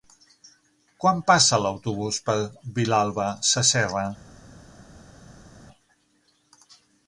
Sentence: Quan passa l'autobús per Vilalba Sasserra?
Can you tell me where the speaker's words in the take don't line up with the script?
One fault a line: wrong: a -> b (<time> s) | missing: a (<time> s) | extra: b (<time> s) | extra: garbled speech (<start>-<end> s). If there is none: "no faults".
no faults